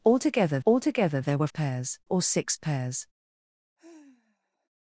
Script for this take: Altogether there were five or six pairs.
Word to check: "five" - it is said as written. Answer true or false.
false